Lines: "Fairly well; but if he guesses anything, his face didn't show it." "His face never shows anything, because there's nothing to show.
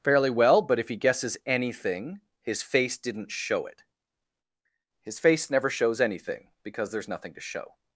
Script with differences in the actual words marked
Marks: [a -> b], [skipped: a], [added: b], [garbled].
"Fairly well; but if he guesses anything, his face didn't show it." "His face never shows anything, because there's nothing to show.